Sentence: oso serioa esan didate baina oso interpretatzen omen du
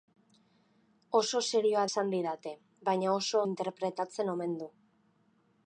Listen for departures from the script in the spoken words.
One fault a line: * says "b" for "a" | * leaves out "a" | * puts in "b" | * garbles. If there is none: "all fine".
all fine